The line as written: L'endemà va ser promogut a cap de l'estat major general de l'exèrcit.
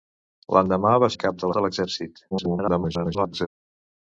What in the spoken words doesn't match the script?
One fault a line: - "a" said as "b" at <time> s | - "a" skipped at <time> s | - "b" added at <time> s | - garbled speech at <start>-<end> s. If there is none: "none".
- "ser promogut" skipped at 1.1 s
- "l'estat major general" skipped at 1.5 s
- garbled speech at 2.3-3.5 s